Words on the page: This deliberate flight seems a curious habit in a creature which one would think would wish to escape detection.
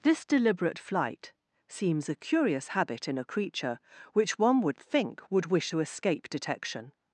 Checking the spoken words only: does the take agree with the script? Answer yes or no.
yes